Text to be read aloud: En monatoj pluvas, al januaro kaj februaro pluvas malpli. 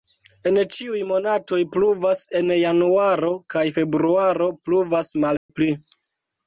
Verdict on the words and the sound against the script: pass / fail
fail